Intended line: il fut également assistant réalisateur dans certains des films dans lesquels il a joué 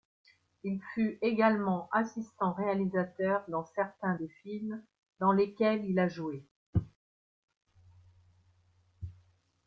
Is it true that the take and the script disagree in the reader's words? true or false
false